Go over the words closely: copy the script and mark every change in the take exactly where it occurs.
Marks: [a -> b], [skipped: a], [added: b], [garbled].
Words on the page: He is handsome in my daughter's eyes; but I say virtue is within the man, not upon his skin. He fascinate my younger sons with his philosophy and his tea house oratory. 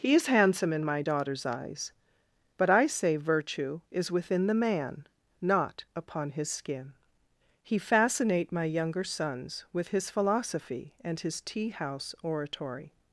He is handsome in my daughter's eyes; but I say virtue is within the man, not upon his skin. He fascinate my younger sons with his philosophy and his tea house oratory.